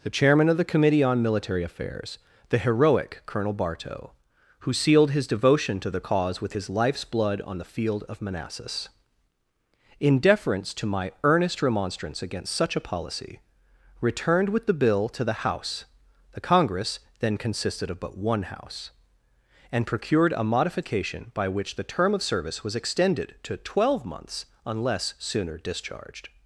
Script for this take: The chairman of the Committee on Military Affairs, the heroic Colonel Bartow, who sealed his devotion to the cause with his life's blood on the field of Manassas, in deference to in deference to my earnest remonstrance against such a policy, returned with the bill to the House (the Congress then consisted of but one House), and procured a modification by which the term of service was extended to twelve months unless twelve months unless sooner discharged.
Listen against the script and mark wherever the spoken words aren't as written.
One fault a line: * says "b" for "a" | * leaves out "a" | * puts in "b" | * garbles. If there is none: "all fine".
* leaves out "in deference to"
* leaves out "twelve months unless"